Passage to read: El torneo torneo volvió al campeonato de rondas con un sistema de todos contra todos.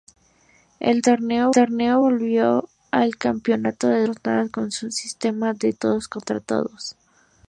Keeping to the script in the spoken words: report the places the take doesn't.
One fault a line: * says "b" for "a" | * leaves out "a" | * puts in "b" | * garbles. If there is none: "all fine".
all fine